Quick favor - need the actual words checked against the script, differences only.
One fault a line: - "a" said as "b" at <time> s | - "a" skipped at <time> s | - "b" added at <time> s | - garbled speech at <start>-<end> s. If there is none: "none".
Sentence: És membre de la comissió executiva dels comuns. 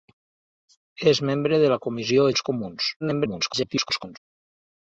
- "executiva" skipped at 2.3 s
- garbled speech at 3.0-4.2 s